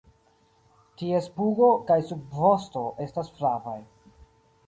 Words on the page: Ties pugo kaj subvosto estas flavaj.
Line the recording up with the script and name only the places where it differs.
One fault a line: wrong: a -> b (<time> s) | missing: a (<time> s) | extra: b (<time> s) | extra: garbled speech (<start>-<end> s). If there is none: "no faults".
no faults